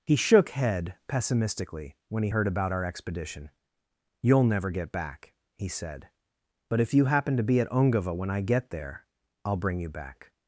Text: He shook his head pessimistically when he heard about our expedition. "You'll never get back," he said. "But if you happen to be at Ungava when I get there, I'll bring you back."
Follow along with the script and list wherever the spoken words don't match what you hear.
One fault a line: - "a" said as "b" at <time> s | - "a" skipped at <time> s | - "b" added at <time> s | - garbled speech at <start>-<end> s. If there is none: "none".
- "his" skipped at 0.5 s